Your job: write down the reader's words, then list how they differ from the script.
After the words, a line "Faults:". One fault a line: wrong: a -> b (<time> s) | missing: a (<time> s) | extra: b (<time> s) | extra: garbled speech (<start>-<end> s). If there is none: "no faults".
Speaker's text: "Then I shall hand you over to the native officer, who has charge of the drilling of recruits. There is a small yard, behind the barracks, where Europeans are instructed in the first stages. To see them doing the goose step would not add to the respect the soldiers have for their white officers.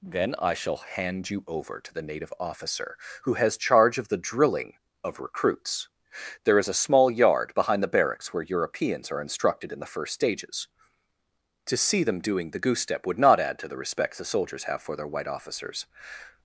"Then I shall hand you over to the native officer, who has charge of the drilling of recruits. There is a small yard, behind the barracks, where Europeans are instructed in the first stages. To see them doing the goose step would not add to the respect the soldiers have for their white officers.
Faults:
no faults